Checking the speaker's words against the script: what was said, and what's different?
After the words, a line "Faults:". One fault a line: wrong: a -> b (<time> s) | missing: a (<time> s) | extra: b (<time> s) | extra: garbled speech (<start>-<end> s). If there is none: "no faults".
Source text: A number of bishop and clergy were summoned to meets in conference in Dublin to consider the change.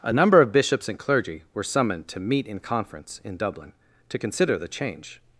A number of bishops and clergy were summoned to meet in conference in Dublin to consider the change.
Faults:
wrong: bishop -> bishops (0.5 s)
wrong: meets -> meet (2.2 s)